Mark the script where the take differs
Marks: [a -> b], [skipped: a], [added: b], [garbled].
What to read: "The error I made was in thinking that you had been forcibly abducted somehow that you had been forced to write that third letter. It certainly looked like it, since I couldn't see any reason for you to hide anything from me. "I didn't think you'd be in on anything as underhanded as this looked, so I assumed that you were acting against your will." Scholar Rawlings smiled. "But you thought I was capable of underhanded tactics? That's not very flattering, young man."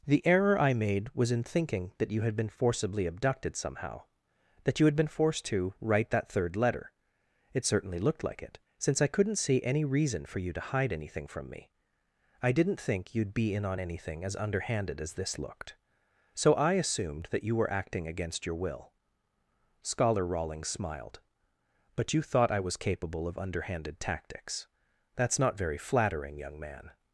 "The error I made was in thinking that you had been forcibly abducted somehow that you had been forced to write that third letter. It certainly looked like it, since I couldn't see any reason for you to hide anything from me. "I didn't think you'd be in on anything as underhanded as this looked, so I assumed that you were acting against your will." Scholar Rawlings smiled. "But you thought I was capable of underhanded tactics? That's not very flattering, young man."